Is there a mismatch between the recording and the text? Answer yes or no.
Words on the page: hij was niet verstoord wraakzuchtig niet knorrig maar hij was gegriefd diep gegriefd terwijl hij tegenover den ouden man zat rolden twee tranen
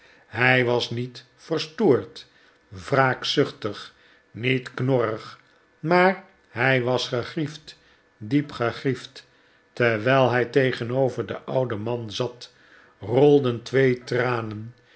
no